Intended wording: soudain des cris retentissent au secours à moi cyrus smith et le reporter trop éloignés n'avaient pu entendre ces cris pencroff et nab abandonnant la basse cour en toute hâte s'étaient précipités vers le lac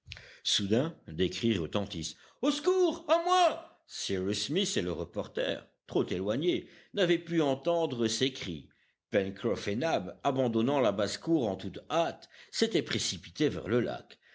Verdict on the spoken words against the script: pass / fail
pass